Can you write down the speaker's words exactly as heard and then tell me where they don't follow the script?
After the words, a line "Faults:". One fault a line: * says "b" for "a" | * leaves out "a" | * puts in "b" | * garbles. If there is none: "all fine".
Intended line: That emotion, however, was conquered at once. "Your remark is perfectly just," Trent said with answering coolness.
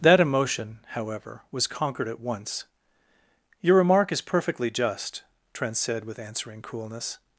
That emotion, however, was conquered at once. "Your remark is perfectly just," Trent said with answering coolness.
Faults:
all fine